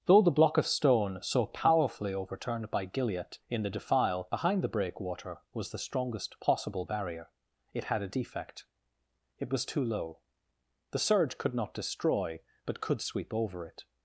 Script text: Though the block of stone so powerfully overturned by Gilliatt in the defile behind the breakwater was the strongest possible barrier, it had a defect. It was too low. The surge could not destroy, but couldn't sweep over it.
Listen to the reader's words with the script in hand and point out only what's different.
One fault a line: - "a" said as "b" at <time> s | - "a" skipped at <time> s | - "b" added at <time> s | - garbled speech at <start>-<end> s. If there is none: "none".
- "couldn't" said as "could" at 12.8 s